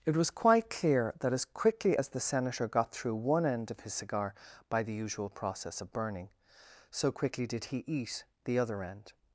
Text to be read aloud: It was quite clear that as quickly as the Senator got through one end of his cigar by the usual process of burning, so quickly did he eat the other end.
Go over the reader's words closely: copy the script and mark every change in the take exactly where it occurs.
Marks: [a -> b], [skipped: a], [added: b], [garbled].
It was quite clear that as quickly as the Senator got through one end of his cigar by the usual process of burning, so quickly did he eat the other end.